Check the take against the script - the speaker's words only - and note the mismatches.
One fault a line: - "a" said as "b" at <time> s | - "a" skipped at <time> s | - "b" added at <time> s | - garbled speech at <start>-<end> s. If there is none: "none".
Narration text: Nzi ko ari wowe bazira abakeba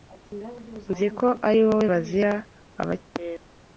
none